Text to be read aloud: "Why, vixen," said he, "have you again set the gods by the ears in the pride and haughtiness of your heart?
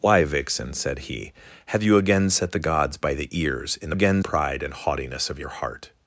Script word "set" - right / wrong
right